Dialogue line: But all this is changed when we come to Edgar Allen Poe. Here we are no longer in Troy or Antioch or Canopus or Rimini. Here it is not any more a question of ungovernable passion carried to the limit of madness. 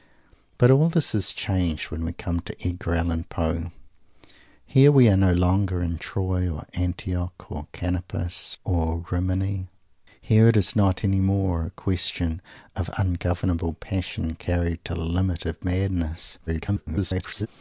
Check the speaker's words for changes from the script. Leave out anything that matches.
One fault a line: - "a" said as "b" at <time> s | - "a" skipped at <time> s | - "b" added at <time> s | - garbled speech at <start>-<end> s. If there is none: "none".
- garbled speech at 16.5-17.5 s